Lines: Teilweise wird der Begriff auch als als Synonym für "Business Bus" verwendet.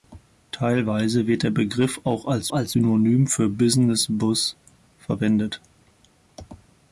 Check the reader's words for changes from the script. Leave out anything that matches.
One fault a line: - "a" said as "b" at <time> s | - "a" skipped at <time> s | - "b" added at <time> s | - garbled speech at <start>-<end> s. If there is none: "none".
none